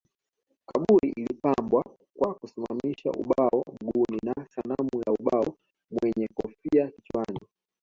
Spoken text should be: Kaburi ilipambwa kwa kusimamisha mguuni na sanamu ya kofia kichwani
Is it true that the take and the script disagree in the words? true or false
true